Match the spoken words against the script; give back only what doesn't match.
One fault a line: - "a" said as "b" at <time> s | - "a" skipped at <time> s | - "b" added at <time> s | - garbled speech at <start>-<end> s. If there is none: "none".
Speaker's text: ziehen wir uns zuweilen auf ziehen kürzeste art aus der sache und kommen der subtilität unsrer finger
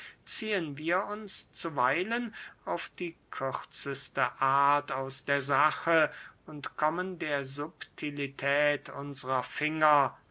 - "ziehen" said as "die" at 3.0 s